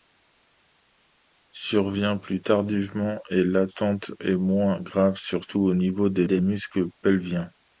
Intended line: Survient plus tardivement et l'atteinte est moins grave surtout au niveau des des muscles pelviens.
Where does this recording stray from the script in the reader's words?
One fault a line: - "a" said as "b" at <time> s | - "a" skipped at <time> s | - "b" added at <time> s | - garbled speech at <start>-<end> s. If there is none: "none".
none